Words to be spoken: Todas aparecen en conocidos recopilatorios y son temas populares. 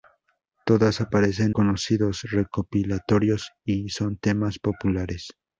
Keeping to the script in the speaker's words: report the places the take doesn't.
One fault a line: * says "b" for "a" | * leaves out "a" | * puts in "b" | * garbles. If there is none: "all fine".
* leaves out "en"